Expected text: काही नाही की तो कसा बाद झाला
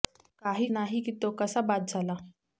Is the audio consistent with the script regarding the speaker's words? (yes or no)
yes